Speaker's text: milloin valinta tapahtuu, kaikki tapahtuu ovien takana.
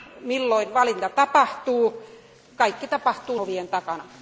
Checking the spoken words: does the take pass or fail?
pass